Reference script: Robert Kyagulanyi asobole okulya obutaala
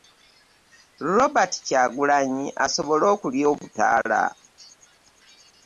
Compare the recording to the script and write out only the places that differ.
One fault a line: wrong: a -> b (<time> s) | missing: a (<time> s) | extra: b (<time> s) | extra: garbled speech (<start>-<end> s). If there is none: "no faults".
no faults